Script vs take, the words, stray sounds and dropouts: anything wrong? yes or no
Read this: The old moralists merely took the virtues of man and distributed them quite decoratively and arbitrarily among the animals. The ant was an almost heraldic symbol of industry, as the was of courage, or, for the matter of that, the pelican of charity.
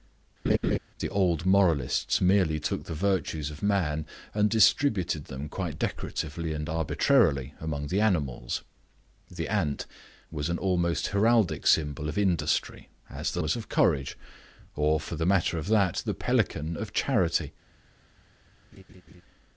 yes